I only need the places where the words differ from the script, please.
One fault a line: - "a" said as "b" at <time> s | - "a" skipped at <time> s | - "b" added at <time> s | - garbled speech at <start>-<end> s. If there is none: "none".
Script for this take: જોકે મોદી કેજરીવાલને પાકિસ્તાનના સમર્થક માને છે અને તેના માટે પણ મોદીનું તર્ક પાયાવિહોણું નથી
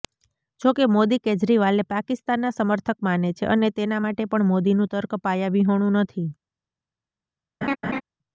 none